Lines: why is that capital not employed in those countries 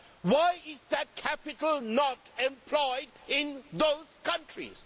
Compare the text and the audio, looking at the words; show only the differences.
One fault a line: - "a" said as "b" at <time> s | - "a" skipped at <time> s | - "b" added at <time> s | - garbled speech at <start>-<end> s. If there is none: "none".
none